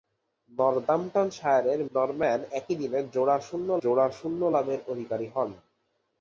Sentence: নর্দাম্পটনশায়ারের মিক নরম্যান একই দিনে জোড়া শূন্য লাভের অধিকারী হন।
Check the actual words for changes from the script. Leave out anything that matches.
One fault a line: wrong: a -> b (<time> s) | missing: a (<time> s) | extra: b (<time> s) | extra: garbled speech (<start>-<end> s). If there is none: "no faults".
missing: মিক (1.8 s)
extra: জোড়া শূন্য (3.8 s)